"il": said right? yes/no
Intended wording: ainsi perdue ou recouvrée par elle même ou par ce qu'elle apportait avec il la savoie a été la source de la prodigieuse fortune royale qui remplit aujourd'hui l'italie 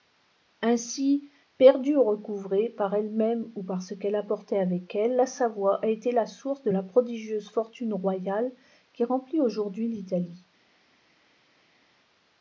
no